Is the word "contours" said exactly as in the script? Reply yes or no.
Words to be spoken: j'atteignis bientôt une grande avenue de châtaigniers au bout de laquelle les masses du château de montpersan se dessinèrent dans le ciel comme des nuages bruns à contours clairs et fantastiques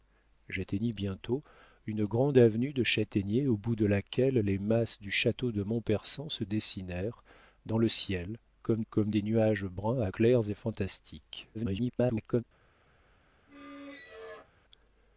no